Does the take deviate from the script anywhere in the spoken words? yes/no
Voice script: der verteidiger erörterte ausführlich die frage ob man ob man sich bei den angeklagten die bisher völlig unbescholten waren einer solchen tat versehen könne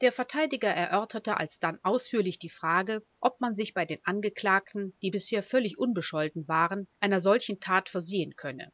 yes